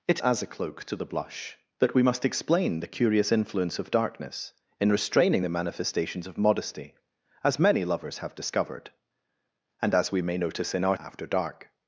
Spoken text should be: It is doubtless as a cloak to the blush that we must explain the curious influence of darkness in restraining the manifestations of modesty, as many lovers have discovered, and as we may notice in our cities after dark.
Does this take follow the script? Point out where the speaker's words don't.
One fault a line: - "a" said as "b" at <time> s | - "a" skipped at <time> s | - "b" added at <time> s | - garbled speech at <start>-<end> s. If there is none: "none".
- "is doubtless" skipped at 0.2 s
- "cities" skipped at 11.0 s